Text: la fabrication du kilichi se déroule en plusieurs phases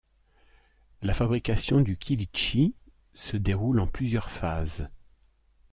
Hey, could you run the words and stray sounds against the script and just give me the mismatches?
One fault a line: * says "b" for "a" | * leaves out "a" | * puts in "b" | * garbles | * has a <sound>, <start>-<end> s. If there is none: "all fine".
all fine